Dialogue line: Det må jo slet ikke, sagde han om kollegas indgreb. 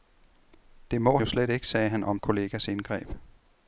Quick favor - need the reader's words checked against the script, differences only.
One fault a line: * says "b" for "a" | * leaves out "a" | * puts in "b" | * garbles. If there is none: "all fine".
all fine